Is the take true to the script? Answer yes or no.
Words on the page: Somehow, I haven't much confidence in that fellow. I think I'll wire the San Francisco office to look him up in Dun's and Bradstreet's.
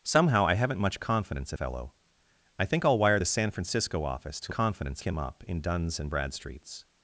no